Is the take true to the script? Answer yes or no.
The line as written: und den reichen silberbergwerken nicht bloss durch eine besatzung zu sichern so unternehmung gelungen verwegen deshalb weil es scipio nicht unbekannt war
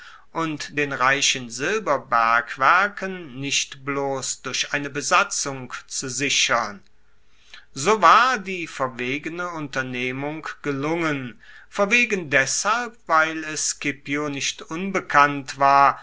no